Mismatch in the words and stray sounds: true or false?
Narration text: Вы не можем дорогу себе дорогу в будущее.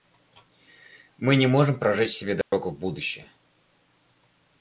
true